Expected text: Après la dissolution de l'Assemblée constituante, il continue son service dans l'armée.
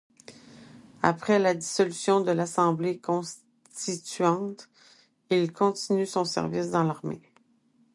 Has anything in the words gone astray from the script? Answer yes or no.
no